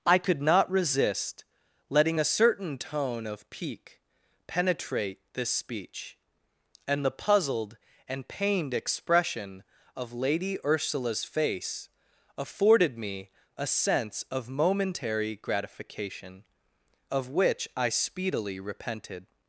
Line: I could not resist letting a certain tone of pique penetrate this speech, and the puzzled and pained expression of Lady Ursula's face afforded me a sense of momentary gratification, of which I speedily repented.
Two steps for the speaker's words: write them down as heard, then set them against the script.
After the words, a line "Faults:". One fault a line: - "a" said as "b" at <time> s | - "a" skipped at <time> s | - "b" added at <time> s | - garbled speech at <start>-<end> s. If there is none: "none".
I could not resist letting a certain tone of pique penetrate this speech, and the puzzled and pained expression of Lady Ursula's face afforded me a sense of momentary gratification, of which I speedily repented.
Faults:
none